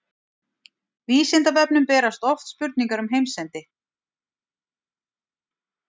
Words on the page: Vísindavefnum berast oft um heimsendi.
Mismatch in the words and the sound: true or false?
true